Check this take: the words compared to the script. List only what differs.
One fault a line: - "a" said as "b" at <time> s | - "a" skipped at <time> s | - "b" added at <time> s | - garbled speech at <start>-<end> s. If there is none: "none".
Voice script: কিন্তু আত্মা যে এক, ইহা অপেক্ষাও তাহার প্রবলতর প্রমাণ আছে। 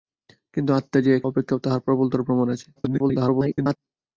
- "ইহা" skipped at 1.2 s
- garbled speech at 2.8-3.8 s